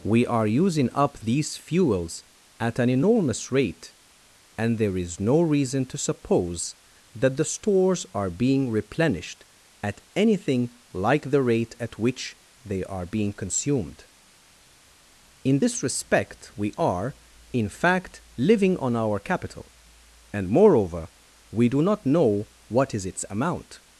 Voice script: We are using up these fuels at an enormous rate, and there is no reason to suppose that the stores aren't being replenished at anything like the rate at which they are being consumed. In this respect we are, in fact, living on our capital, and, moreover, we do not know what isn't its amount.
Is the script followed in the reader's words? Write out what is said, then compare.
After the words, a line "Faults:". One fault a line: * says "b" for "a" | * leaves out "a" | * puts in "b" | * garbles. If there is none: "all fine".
We are using up these fuels at an enormous rate, and there is no reason to suppose that the stores are being replenished at anything like the rate at which they are being consumed. In this respect we are, in fact, living on our capital, and, moreover, we do not know what is its amount.
Faults:
* says "are" for "aren't"
* says "is" for "isn't"